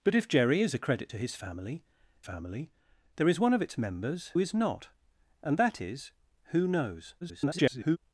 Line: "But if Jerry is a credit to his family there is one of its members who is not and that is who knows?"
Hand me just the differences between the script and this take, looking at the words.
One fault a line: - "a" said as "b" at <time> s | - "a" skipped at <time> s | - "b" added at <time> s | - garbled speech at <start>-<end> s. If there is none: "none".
- "family" added at 2.2 s
- "who" skipped at 4.3 s
- garbled speech at 7.2-8.0 s